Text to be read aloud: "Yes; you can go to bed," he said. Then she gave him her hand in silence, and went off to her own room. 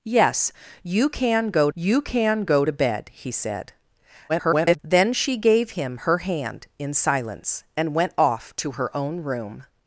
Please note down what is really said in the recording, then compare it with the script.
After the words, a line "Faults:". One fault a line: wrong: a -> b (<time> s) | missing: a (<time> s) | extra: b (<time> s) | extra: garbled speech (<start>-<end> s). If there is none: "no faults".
"Yes; you can go you can go to bed," he said. [garbled] Then she gave him her hand in silence, and went off to her own room.
Faults:
extra: you can go (1.7 s)
extra: garbled speech (4.3-4.8 s)